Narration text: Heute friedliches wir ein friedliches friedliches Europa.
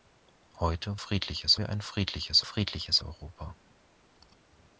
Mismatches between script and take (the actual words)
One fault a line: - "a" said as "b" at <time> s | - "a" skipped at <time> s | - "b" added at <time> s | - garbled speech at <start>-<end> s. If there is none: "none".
none